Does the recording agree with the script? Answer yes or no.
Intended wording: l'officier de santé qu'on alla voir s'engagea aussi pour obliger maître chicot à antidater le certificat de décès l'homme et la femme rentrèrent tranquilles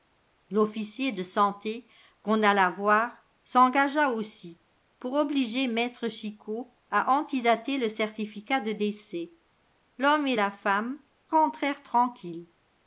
yes